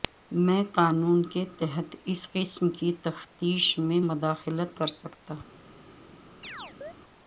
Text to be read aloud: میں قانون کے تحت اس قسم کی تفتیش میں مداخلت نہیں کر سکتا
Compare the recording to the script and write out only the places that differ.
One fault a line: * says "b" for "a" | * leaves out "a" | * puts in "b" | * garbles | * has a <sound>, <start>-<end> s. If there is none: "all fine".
* leaves out "نہیں"
* has a chirp, 6.4-6.9 s